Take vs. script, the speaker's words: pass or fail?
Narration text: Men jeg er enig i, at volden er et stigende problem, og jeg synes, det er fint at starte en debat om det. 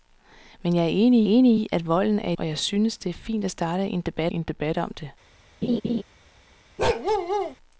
fail